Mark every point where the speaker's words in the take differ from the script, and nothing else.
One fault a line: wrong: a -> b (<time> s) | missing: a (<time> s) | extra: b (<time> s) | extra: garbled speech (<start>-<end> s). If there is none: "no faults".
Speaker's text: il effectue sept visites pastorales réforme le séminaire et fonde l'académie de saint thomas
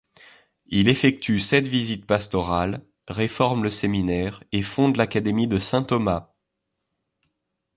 no faults